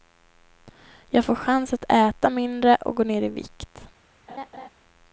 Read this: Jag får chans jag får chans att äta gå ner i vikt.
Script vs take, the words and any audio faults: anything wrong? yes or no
yes